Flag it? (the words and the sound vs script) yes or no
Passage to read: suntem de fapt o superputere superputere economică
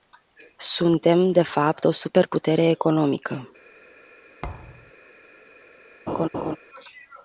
yes